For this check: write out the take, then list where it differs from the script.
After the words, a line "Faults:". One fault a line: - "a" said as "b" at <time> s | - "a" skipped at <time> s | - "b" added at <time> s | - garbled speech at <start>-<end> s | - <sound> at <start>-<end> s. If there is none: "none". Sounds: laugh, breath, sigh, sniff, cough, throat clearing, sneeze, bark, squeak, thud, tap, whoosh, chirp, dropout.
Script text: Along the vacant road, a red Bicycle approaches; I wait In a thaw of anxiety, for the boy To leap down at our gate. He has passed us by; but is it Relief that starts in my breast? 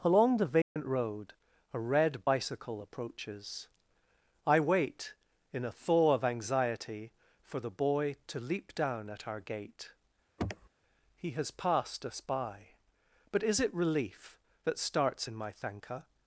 Along the vacant road, a red Bicycle approaches; I wait In a thaw of anxiety, for the boy To leap down at our gate. He has passed us by; but is it Relief that starts in my thanka?
Faults:
- dropout at 0.6-0.8 s
- sniff at 10.4-10.7 s
- "breast" said as "thanka" at 15.5 s